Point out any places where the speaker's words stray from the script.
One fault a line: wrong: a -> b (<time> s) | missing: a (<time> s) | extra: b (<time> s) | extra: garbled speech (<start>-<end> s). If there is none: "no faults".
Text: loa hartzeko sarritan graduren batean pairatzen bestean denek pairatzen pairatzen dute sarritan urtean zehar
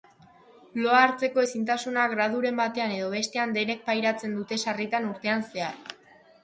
wrong: sarritan -> ezintasuna (1.5 s)
wrong: pairatzen -> edo (3.0 s)
missing: pairatzen (4.4 s)